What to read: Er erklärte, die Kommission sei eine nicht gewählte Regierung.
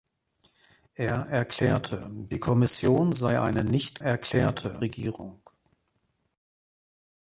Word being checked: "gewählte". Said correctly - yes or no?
no